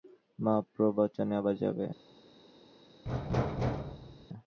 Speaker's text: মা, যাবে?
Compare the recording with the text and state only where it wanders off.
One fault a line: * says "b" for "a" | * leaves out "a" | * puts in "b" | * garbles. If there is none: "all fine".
* puts in "প্রবচনে আবার"